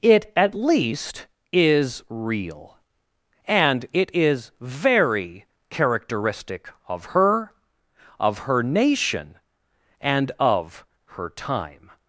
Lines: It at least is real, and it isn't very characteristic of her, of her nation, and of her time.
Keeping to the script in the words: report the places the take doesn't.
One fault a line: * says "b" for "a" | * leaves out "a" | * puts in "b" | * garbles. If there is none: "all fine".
* says "is" for "isn't"